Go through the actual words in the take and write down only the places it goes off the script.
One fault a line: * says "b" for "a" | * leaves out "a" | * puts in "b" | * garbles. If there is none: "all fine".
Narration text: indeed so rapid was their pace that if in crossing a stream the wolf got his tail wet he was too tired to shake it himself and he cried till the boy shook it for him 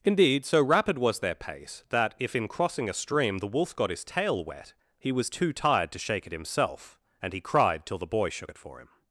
all fine